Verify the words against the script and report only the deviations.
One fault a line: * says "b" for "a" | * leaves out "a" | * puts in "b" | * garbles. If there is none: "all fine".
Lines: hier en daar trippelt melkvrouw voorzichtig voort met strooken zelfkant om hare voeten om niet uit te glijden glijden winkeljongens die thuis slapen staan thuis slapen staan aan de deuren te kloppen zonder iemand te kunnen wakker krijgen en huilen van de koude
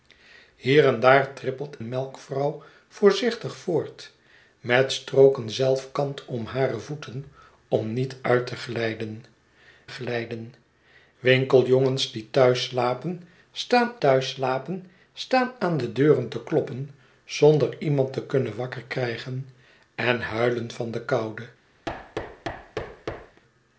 all fine